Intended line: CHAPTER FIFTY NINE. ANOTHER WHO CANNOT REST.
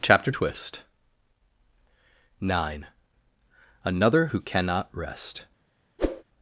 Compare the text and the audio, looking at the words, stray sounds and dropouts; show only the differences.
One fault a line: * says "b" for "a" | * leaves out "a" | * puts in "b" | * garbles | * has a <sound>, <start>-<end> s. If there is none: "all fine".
* says "Twist" for "FIFTY"
* has a whoosh, 6.0-6.2 s